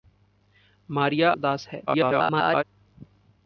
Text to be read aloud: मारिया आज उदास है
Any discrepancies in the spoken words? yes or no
yes